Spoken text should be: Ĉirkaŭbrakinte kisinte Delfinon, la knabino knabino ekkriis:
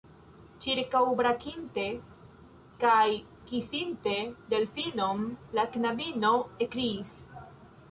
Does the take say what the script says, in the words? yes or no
no